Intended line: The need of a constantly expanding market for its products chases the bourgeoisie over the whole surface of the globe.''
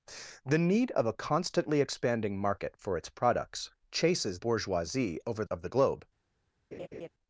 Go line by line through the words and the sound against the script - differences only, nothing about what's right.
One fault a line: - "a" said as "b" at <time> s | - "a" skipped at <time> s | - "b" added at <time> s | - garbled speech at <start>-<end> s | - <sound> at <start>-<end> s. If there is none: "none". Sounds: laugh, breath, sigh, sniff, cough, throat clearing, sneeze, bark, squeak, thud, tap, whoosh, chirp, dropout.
- "the" skipped at 4.4 s
- "the whole surface" skipped at 5.5 s
- laugh at 6.7-7.1 s